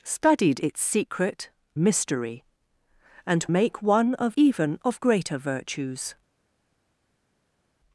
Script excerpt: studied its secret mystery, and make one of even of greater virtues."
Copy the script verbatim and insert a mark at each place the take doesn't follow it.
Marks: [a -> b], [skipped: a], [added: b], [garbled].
studied its secret mystery, and make one of even of greater virtues."